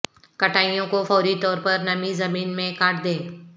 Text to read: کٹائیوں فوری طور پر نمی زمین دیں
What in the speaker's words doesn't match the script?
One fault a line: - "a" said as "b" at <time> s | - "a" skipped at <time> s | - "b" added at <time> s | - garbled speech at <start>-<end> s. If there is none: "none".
- "کو" added at 0.9 s
- "میں کاٹ" added at 2.6 s